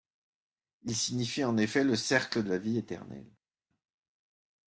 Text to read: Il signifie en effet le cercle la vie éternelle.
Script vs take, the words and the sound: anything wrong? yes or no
no